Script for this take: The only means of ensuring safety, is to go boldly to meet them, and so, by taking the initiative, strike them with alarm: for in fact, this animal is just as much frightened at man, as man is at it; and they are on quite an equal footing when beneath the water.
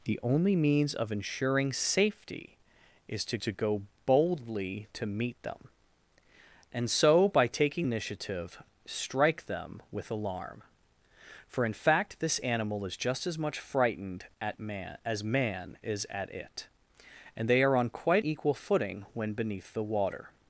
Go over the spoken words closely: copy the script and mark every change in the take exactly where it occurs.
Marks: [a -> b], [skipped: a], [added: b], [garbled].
The only means of ensuring safety, is to [added: to] go boldly to meet them, and so, by taking [skipped: the] initiative, strike them with alarm: for in fact, this animal is just as much frightened at man, as man is at it; and they are on quite [skipped: an] equal footing when beneath the water.